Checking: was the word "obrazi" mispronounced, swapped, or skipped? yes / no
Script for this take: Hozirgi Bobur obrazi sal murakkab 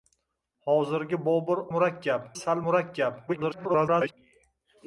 yes